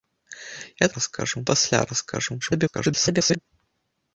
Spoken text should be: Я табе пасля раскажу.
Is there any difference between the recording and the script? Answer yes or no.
yes